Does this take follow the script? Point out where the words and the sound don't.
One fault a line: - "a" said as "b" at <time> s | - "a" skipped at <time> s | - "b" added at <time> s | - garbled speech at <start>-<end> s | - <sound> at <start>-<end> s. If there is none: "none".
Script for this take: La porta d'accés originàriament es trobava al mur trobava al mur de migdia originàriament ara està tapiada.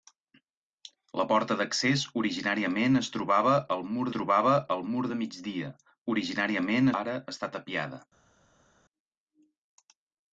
none